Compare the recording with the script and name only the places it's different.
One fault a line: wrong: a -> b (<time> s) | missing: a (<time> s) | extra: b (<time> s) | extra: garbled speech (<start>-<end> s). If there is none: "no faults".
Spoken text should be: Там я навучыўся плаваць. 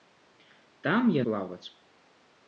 missing: навучыўся (1.2 s)